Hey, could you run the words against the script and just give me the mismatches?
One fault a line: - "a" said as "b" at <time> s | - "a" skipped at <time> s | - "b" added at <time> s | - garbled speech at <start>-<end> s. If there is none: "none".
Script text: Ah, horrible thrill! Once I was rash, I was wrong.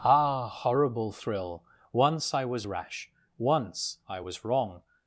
- "once" added at 3.4 s